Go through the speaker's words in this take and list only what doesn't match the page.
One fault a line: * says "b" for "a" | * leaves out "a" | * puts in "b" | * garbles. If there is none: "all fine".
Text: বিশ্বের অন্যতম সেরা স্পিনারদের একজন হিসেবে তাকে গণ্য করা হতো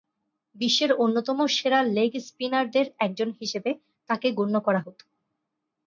* puts in "লেগ"